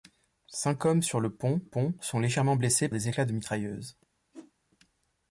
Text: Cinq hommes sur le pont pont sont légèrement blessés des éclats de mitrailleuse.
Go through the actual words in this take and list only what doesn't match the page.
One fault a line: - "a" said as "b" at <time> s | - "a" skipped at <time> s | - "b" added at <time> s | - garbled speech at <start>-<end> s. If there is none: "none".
none